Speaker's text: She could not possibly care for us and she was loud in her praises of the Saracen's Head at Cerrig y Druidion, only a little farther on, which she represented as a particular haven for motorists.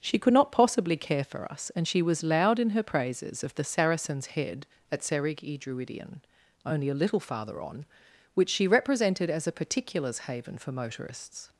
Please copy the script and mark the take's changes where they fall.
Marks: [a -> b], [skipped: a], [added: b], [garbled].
She could not possibly care for us and she was loud in her praises of the Saracen's Head at Cerrig y Druidion, only a little farther on, which she represented as a [particular -> particulars] haven for motorists.